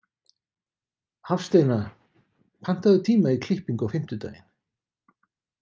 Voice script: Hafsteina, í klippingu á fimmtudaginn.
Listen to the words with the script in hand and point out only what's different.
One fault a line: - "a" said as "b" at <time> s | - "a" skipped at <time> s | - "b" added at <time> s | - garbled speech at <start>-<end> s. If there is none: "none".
- "pantaðu tíma" added at 2.7 s